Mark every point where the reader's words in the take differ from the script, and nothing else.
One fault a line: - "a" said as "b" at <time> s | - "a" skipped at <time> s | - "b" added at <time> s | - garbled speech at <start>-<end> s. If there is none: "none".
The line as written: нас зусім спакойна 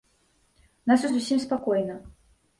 none